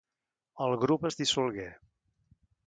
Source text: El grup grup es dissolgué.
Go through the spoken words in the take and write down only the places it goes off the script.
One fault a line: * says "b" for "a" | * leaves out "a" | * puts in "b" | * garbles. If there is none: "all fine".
* leaves out "grup"